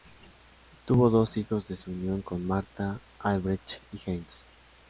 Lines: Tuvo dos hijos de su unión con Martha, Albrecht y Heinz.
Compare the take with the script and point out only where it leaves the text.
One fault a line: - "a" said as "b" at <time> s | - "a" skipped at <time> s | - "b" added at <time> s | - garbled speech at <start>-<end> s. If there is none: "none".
none